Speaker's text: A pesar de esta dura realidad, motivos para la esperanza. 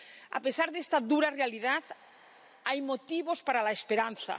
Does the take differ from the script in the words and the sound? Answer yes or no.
yes